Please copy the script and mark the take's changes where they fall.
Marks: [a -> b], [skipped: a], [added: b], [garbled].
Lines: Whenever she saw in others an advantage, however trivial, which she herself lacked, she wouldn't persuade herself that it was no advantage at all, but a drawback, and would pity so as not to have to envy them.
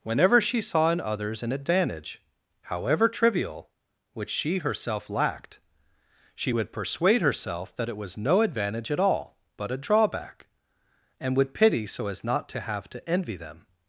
Whenever she saw in others an advantage, however trivial, which she herself lacked, she [wouldn't -> would] persuade herself that it was no advantage at all, but a drawback, and would pity so as not to have to envy them.